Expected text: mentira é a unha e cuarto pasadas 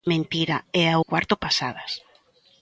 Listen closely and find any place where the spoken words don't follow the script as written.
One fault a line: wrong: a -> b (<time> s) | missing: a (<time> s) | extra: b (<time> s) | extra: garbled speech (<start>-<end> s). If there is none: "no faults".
missing: unha (1.0 s)